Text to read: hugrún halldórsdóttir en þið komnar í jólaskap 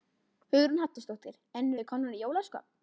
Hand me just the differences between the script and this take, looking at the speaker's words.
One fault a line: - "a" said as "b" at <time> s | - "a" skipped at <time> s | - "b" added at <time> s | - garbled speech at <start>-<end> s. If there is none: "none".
none